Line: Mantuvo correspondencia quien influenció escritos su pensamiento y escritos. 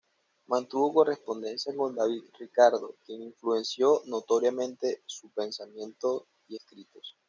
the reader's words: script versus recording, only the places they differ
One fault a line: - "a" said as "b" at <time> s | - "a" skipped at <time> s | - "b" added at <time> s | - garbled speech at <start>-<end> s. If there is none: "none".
- "con David Ricardo" added at 1.8 s
- "escritos" said as "notoriamente" at 4.0 s